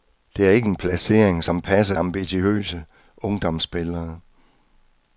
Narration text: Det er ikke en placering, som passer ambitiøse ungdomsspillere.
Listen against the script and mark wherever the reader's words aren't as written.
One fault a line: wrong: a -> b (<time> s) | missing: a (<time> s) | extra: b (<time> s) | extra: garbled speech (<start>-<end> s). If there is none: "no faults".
no faults